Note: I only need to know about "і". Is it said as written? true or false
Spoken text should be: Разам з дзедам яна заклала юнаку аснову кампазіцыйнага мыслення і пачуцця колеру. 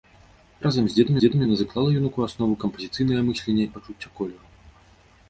false